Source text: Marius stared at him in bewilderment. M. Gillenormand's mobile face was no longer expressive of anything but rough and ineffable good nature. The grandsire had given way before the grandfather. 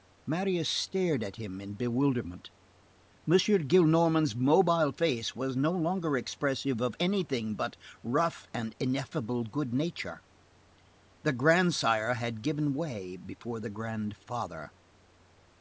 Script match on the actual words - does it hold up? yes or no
yes